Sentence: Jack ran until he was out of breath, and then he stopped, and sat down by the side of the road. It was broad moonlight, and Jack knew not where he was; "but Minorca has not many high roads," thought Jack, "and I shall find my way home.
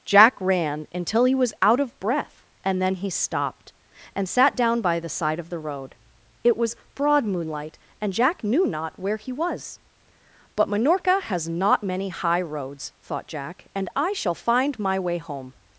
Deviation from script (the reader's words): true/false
false